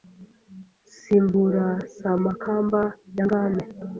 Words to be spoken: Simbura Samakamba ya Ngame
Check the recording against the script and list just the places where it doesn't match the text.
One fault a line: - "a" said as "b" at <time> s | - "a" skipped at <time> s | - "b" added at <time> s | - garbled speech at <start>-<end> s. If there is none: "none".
none